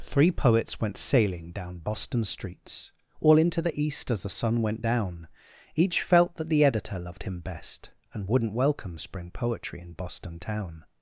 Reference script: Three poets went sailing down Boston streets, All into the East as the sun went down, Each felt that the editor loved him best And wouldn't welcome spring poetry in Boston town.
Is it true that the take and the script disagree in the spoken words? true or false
false